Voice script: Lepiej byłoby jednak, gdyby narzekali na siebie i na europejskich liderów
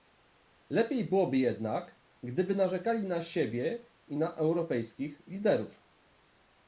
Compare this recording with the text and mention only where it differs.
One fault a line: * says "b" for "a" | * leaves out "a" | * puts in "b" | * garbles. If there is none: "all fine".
all fine